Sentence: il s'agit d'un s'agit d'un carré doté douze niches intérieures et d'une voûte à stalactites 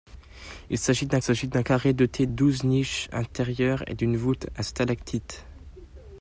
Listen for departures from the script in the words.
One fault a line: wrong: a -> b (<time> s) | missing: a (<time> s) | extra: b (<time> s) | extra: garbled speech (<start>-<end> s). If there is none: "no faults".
no faults